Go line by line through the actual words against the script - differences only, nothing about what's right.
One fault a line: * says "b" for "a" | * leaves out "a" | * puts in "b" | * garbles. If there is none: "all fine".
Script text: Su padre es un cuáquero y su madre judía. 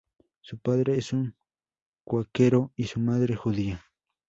all fine